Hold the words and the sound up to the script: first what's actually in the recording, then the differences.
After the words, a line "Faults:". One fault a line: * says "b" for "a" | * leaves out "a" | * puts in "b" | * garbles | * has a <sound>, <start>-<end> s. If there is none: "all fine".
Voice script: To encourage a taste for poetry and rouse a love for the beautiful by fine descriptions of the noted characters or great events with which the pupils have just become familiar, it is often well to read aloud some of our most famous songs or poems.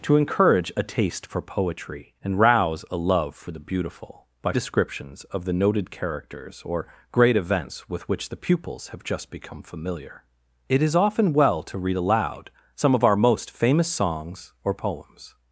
To encourage a taste for poetry and rouse a love for the beautiful by descriptions of the noted characters or great events with which the pupils have just become familiar, it is often well to read aloud some of our most famous songs or poems.
Faults:
* leaves out "fine"